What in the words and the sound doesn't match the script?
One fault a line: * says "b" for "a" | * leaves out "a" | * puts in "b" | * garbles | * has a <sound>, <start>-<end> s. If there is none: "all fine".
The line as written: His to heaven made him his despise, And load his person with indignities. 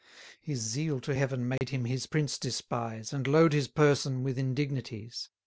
* puts in "zeal"
* has a dropout, 1.6-1.6 s
* puts in "prince"